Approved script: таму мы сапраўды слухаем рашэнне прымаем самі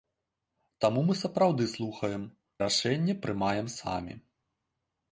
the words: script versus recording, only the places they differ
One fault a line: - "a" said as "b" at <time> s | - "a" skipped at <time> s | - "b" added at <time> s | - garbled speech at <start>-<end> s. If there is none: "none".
none